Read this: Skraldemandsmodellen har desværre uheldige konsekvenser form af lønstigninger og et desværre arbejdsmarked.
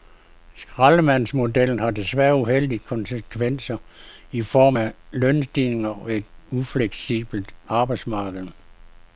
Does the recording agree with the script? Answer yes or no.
no